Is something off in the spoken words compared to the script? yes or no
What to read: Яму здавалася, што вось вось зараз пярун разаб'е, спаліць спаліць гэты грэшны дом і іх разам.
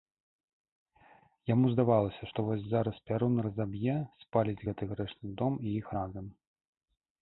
yes